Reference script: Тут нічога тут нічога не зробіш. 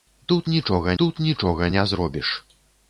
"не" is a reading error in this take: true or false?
false